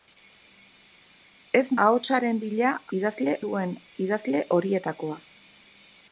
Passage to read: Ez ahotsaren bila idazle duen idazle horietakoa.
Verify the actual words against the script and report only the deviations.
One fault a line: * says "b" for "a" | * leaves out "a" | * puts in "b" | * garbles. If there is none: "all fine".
all fine